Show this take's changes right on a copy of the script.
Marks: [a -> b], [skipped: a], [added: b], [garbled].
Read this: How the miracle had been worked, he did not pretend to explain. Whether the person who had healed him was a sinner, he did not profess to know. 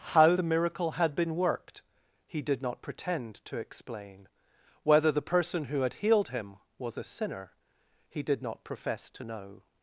How the miracle had been worked, he did not pretend to explain. Whether the person who had healed him was a sinner, he did not profess to know.